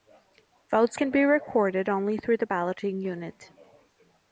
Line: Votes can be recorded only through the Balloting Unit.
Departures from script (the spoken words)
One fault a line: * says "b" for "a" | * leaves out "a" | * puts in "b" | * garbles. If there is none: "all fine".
all fine